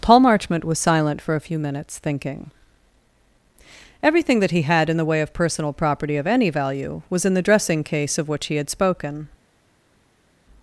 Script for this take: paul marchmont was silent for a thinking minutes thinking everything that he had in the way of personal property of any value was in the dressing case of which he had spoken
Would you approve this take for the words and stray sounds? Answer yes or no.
no